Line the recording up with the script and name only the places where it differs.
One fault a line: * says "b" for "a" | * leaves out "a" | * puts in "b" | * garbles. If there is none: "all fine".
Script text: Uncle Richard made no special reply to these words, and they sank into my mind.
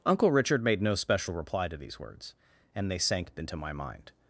all fine